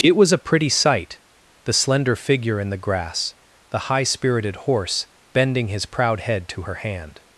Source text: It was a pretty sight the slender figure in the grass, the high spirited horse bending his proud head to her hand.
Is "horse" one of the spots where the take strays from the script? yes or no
no